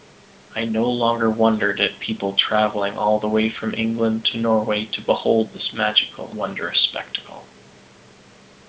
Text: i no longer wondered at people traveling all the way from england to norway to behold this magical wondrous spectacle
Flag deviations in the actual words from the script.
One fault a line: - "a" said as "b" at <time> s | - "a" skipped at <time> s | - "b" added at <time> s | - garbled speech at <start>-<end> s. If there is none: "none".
none